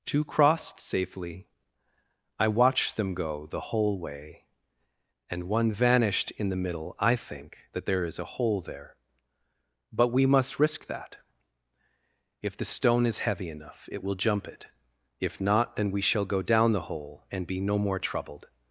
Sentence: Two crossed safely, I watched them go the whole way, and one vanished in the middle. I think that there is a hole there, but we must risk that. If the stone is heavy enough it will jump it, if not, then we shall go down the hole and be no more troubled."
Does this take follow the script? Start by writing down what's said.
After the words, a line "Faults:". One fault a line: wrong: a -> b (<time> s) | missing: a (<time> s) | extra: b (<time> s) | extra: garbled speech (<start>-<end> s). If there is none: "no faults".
Two crossed safely, I watched them go the whole way, and one vanished in the middle. I think that there is a hole there, but we must risk that. If the stone is heavy enough it will jump it, if not, then we shall go down the hole and be no more troubled."
Faults:
no faults